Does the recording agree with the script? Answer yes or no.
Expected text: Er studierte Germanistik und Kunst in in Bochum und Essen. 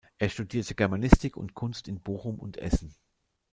no